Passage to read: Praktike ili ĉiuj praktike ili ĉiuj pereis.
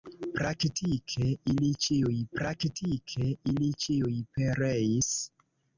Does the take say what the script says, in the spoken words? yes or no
yes